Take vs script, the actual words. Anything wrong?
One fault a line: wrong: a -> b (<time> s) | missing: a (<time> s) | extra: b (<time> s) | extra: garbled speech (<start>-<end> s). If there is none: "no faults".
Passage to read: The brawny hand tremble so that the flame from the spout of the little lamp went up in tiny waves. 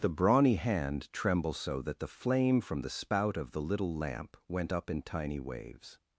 no faults